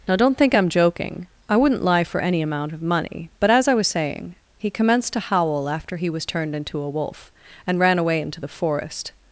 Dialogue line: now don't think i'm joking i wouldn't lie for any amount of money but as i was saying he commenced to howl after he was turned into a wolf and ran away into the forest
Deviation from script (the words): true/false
false